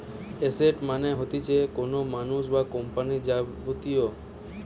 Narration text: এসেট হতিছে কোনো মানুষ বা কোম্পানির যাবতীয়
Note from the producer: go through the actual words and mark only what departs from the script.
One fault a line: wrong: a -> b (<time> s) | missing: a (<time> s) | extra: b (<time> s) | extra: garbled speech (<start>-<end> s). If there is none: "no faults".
extra: মানে (0.9 s)